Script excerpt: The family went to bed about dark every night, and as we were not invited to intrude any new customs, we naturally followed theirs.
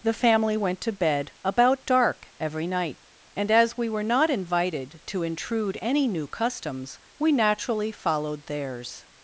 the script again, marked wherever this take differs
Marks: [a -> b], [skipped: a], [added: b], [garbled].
The family went to bed about dark every night, and as we were not invited to intrude any new customs, we naturally followed theirs.